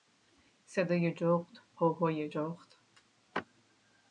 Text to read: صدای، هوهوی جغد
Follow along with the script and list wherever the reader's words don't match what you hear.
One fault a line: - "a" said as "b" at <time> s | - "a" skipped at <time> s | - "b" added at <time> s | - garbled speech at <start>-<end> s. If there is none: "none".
- "جغد" added at 1.1 s